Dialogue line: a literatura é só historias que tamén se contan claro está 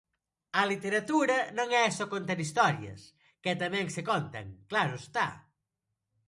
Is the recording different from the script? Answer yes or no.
yes